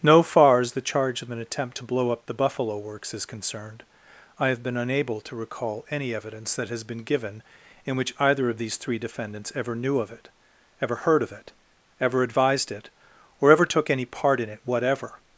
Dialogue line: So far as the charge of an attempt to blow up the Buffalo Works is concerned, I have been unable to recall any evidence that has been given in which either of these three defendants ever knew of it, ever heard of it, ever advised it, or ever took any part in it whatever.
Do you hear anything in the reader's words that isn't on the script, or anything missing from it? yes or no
yes